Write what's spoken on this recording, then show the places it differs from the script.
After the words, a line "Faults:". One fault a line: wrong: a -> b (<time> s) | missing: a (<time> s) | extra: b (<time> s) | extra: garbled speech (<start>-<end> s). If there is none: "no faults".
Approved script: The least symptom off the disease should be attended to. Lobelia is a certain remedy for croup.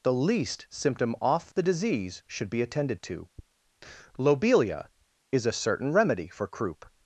The least symptom off the disease should be attended to. Lobelia is a certain remedy for croup.
Faults:
no faults